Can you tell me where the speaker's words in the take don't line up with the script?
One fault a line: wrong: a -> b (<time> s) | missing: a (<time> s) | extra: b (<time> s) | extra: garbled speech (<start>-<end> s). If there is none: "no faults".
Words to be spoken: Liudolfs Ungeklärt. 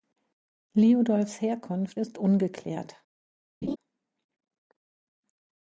extra: Herkunft ist (1.4 s)